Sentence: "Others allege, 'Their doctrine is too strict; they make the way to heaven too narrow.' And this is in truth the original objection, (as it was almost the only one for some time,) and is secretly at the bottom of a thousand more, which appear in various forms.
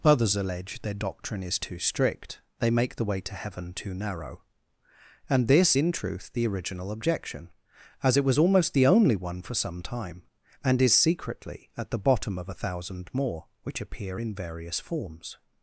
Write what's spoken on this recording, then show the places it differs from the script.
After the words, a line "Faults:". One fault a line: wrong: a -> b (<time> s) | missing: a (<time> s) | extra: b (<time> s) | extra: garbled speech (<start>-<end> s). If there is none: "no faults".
"Others allege, 'Their doctrine is too strict; they make the way to heaven too narrow.' And this in truth the original objection, (as it was almost the only one for some time,) and is secretly at the bottom of a thousand more, which appear in various forms.
Faults:
missing: is (5.8 s)